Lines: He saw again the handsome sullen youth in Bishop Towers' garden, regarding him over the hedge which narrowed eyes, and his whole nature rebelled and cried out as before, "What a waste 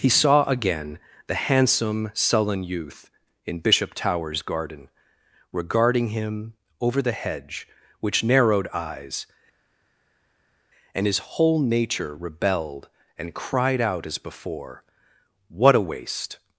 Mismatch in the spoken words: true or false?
false